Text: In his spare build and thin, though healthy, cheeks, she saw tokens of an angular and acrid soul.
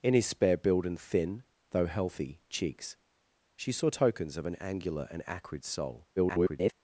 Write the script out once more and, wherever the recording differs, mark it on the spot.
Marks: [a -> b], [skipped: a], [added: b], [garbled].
In his spare build and thin, though healthy, cheeks, she saw tokens of an angular and acrid soul. [garbled]